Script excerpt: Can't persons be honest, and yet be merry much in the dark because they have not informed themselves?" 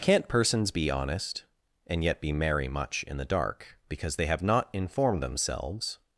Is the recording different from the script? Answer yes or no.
no